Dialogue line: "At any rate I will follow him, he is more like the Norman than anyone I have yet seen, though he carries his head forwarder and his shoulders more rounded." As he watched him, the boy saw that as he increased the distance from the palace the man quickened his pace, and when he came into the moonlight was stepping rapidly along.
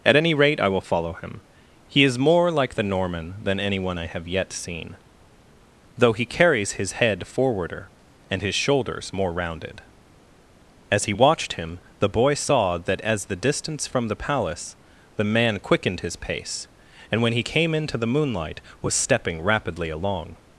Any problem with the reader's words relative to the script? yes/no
yes